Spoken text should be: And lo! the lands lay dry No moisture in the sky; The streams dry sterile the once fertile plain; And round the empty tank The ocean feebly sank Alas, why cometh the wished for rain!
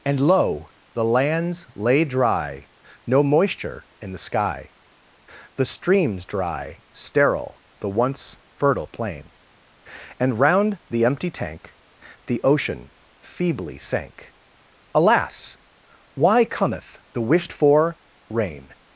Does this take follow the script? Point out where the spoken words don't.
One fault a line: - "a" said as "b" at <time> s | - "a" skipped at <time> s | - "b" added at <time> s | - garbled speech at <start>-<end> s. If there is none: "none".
none